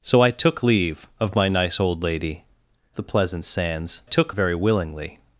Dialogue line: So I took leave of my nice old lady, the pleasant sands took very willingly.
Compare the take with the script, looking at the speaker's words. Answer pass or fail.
pass